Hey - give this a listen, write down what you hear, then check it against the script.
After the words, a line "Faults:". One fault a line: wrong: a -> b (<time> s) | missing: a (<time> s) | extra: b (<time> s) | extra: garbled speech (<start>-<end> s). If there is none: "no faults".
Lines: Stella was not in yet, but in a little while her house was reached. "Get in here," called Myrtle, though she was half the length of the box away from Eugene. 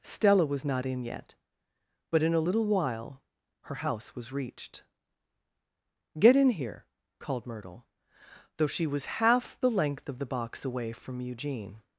Stella was not in yet, but in a little while her house was reached. "Get in here," called Myrtle, though she was half the length of the box away from Eugene.
Faults:
no faults